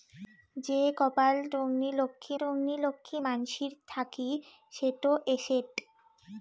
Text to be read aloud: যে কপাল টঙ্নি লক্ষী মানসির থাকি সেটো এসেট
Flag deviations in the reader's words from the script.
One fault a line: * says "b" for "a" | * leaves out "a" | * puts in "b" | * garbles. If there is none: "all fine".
* puts in "টঙ্নি লক্ষী"